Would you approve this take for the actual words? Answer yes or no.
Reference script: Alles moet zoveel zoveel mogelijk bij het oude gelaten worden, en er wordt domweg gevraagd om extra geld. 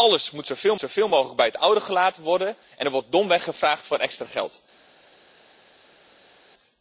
yes